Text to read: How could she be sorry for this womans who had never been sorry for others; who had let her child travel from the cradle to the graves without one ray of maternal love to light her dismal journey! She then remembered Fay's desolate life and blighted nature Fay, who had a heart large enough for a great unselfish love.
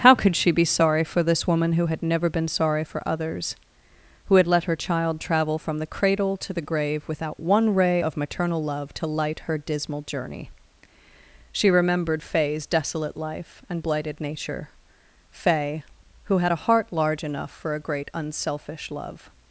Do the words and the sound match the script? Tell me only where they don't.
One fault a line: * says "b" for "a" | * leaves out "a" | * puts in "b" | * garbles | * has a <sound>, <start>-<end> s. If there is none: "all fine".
* says "woman" for "womans"
* says "grave" for "graves"
* leaves out "then"